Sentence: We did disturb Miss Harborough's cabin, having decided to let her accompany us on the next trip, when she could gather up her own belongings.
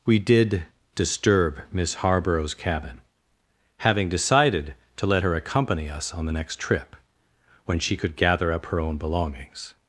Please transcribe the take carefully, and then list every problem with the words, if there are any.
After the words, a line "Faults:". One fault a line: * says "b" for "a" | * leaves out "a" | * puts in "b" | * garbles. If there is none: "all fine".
We did disturb Miss Harborough's cabin, having decided to let her accompany us on the next trip, when she could gather up her own belongings.
Faults:
all fine